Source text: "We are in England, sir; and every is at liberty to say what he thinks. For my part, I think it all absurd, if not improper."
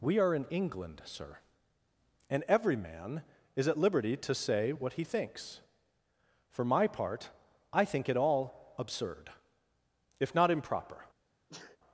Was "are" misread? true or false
false